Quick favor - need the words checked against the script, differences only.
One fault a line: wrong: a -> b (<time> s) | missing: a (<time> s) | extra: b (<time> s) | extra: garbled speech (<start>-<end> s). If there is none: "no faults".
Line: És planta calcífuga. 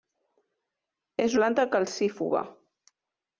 no faults